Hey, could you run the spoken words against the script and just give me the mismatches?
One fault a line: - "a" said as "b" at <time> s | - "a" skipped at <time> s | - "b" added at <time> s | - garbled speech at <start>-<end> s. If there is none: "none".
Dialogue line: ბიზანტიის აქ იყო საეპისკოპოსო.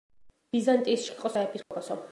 none